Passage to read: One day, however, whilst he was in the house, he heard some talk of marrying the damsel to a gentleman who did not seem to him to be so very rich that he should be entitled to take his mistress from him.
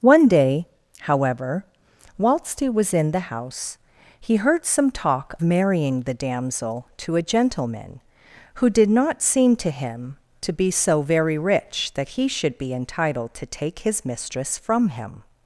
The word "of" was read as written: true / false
false